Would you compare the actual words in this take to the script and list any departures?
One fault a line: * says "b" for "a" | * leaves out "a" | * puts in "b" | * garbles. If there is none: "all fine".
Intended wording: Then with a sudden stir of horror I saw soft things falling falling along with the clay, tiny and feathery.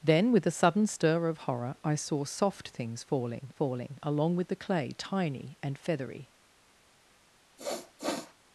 all fine